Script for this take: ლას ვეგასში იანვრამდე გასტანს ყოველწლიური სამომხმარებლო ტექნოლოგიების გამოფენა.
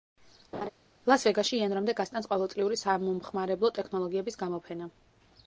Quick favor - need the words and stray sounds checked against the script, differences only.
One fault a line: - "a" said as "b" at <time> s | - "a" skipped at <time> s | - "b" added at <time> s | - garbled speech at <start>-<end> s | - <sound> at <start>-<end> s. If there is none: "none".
- laugh at 0.5-0.7 s